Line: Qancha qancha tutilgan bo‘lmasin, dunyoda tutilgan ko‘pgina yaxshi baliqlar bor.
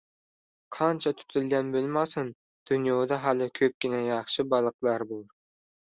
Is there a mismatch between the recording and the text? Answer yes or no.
yes